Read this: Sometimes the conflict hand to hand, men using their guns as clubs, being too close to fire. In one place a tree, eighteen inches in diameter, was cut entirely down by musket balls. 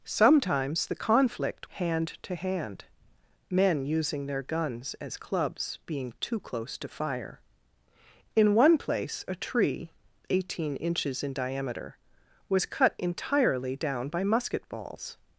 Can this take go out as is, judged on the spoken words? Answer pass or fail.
pass